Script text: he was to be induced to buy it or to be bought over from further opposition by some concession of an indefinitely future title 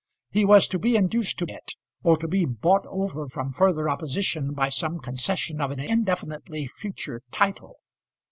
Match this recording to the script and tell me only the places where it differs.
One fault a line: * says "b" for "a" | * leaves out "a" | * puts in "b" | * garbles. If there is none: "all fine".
* leaves out "buy"